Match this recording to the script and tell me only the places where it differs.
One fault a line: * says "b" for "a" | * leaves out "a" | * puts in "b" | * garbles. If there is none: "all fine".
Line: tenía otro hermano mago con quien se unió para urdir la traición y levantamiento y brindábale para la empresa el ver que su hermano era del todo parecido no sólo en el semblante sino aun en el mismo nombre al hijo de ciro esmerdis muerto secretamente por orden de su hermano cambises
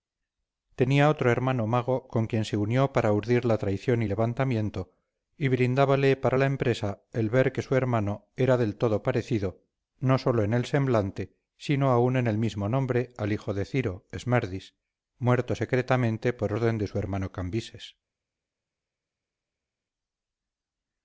all fine